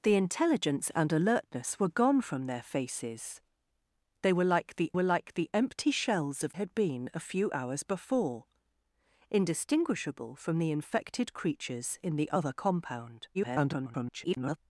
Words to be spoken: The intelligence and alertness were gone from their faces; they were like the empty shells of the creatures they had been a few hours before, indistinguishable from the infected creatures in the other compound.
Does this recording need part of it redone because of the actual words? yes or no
yes